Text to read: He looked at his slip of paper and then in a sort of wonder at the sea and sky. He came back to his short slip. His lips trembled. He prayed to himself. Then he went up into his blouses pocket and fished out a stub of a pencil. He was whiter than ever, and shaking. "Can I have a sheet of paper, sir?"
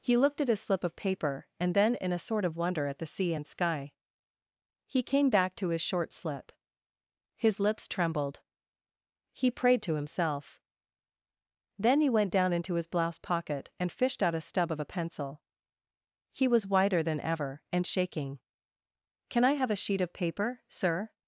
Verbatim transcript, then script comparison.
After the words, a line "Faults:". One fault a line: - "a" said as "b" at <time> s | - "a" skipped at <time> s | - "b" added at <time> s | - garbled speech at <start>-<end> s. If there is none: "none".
He looked at his slip of paper and then in a sort of wonder at the sea and sky. He came back to his short slip. His lips trembled. He prayed to himself. Then he went down into his blouse pocket and fished out a stub of a pencil. He was whiter than ever, and shaking. "Can I have a sheet of paper, sir?"
Faults:
- "up" said as "down" at 12.3 s
- "blouses" said as "blouse" at 12.9 s